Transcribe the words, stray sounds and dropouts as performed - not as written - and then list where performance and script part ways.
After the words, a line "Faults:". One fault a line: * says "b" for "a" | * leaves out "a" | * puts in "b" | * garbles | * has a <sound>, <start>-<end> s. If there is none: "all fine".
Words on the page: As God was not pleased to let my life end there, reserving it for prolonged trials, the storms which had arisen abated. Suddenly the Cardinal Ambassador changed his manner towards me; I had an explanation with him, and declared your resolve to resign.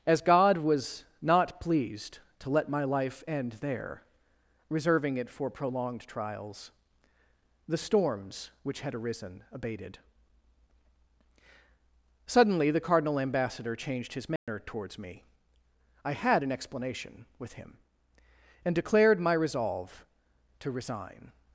As God was not pleased to let my life end there, reserving it for prolonged trials, the storms which had arisen abated. Suddenly the Cardinal Ambassador changed his manner towards me; I had an explanation with him, and declared my resolve to resign.
Faults:
* has a dropout, 14.4-14.5 s
* says "my" for "your"